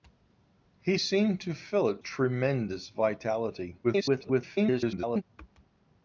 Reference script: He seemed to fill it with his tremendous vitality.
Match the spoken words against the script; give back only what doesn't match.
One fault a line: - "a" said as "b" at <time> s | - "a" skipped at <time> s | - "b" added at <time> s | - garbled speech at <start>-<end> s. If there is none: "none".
- "with his" skipped at 2.0 s
- garbled speech at 3.8-5.2 s